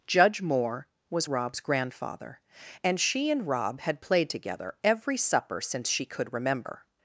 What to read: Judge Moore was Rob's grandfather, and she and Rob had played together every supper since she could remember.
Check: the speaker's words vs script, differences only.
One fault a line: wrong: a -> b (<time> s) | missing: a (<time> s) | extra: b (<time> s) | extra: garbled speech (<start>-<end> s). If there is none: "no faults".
no faults